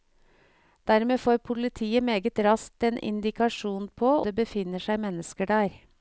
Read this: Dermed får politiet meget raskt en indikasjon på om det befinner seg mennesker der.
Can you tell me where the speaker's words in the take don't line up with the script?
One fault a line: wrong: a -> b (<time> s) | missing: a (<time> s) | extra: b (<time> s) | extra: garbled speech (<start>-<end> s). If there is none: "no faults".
missing: om (4.2 s)